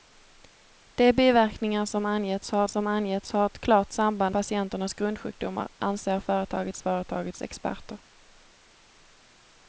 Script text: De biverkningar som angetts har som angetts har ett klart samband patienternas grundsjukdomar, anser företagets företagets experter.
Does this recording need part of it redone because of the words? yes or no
no